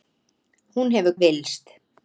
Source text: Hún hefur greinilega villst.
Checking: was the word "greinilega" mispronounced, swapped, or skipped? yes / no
yes